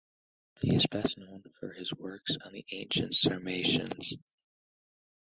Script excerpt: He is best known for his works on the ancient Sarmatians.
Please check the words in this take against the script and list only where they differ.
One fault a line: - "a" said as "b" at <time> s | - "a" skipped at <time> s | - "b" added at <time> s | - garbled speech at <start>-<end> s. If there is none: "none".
none